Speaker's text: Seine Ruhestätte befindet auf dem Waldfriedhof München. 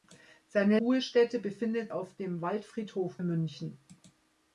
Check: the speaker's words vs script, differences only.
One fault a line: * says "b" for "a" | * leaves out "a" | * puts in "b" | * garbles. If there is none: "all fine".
all fine